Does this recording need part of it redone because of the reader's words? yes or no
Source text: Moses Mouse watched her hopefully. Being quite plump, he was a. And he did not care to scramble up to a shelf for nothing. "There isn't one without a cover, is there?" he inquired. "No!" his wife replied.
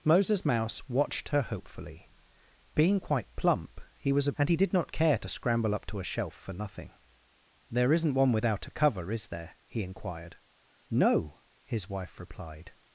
no